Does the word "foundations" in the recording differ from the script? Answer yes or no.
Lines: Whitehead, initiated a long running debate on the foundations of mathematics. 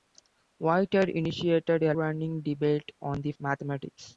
yes